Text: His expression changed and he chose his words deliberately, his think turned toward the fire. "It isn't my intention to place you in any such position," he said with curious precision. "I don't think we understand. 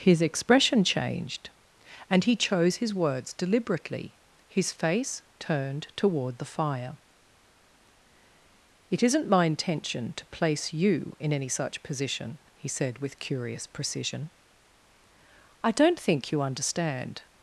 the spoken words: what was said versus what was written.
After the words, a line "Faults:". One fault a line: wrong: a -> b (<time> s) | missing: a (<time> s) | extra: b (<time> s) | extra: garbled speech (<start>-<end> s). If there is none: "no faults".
His expression changed and he chose his words deliberately, his face turned toward the fire. "It isn't my intention to place you in any such position," he said with curious precision. "I don't think you understand.
Faults:
wrong: think -> face (4.7 s)
wrong: we -> you (16.3 s)